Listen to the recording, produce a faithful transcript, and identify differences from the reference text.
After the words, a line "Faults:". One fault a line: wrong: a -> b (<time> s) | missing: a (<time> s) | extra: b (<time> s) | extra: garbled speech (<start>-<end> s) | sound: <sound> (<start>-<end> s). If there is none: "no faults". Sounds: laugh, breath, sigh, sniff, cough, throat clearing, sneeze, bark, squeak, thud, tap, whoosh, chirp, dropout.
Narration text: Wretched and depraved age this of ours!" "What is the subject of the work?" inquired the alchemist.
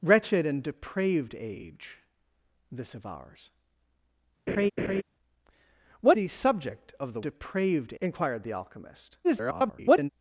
Wretched and depraved age this of ours!" "What the subject of the depraved?" inquired the alchemist. [garbled]
Faults:
sound: laugh (4.5-5.0 s)
missing: is (6.2 s)
wrong: work -> depraved (7.2 s)
extra: garbled speech (9.2-10.1 s)